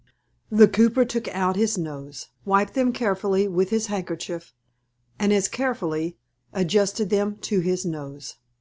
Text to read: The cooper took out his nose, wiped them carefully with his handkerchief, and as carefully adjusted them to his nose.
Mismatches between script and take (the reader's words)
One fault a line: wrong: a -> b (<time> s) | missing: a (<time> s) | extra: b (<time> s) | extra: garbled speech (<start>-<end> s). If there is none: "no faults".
no faults